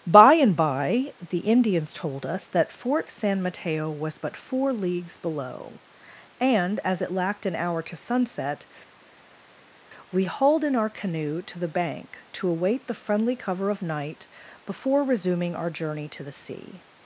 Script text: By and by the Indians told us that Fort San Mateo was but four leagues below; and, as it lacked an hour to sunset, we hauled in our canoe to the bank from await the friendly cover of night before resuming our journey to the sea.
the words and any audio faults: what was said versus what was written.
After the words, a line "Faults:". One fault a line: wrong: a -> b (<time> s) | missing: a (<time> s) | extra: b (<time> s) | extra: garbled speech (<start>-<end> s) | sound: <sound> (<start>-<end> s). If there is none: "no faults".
By and by the Indians told us that Fort San Mateo was but four leagues below; and, as it lacked an hour to sunset, we hauled in our canoe to the bank to await the friendly cover of night before resuming our journey to the sea.
Faults:
wrong: from -> to (12.3 s)